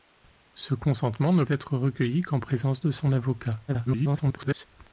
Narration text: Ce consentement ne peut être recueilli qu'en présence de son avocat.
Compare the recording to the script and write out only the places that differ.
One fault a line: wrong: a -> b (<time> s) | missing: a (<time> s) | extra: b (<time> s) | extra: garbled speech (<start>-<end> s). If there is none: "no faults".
missing: peut (1.4 s)
extra: garbled speech (3.7-4.7 s)